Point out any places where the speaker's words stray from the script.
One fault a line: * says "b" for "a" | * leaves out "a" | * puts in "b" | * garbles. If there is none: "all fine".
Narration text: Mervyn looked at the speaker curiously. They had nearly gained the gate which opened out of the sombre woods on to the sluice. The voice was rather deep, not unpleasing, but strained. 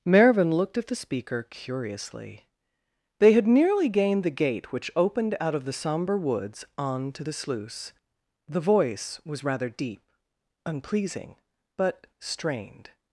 * leaves out "not"